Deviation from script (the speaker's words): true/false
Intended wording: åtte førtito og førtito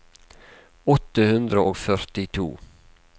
true